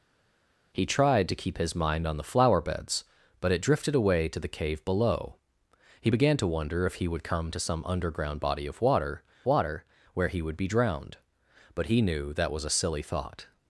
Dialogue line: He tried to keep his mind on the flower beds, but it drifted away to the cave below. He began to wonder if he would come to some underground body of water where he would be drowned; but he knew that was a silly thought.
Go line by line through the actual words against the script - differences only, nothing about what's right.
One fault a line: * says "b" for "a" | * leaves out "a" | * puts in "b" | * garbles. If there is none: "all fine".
* puts in "water"